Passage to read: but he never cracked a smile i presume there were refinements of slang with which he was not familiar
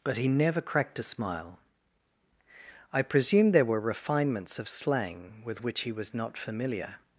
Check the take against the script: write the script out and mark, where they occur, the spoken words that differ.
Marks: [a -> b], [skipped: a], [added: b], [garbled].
but he never cracked a smile i presume there were refinements of slang with which he was not familiar